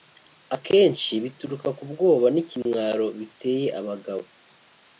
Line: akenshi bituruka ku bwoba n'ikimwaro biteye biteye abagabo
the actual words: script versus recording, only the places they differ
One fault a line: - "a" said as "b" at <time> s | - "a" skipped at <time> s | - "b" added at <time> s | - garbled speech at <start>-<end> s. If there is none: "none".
- "biteye" skipped at 3.7 s